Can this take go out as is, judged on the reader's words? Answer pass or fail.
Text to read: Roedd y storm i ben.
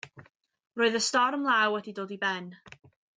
fail